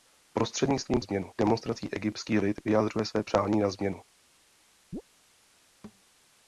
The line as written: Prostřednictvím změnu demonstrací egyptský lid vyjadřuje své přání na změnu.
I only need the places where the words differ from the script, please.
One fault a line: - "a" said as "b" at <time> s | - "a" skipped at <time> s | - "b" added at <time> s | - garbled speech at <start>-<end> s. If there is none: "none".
none